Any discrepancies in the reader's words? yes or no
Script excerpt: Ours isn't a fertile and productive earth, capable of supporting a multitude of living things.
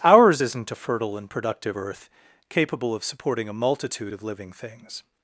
no